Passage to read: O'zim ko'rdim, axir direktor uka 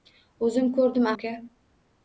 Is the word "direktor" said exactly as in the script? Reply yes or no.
no